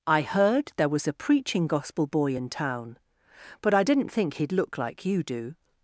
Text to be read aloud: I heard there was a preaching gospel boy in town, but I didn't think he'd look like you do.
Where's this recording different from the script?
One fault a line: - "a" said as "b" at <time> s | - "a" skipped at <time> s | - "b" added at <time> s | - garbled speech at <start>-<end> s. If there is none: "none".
none